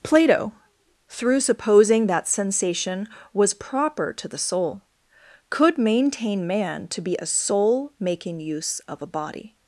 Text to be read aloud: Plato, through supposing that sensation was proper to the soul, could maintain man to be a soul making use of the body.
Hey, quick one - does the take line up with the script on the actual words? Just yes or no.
no